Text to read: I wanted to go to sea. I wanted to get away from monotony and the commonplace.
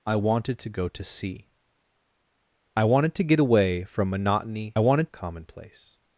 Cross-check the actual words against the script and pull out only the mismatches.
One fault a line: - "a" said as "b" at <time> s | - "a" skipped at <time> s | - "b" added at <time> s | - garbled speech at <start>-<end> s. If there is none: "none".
- "and" said as "wanted" at 4.8 s